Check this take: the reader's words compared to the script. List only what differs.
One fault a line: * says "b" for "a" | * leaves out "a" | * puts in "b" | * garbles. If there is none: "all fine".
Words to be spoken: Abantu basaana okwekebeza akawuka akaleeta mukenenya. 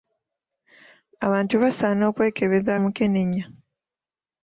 * leaves out "akawuka akaleeta"